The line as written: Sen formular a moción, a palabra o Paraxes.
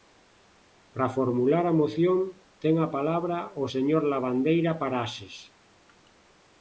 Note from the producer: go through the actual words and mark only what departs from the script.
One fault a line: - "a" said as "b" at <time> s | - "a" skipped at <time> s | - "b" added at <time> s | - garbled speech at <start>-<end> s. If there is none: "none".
- "Sen" said as "Para" at 0.9 s
- "ten" added at 2.6 s
- "señor Lavandeira" added at 3.7 s